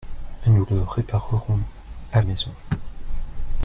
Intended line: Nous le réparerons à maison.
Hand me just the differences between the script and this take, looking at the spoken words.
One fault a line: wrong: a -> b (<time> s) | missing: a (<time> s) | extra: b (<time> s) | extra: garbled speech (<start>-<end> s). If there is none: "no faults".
no faults